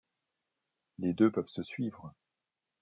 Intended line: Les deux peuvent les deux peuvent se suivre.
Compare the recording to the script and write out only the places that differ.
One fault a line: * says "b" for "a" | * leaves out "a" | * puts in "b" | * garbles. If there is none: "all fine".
* leaves out "les deux peuvent"